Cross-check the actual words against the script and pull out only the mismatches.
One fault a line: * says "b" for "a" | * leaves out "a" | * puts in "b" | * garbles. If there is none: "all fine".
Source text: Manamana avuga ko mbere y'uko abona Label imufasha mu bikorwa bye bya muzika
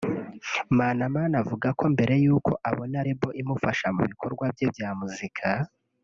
all fine